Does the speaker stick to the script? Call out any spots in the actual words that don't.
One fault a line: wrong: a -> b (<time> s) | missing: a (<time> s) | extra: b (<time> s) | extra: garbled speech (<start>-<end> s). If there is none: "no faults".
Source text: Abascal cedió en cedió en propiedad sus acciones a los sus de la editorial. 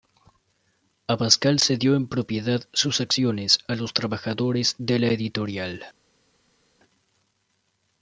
missing: cedió en (2.1 s)
wrong: sus -> trabajadores (3.9 s)